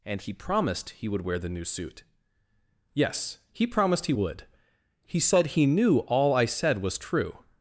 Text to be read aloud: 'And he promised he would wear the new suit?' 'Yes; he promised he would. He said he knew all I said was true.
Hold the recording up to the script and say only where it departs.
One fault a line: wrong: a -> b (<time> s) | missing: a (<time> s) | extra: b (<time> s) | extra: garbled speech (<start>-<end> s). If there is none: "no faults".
no faults